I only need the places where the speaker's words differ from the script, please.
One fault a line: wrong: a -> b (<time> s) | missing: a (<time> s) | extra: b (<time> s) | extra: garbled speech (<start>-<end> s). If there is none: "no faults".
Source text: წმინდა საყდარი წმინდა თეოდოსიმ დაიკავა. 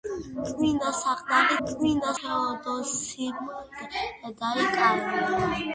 no faults